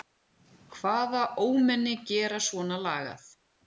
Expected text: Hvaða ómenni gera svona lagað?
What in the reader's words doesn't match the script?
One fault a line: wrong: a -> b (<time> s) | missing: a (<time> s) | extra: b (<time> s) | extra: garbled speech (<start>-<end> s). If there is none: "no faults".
no faults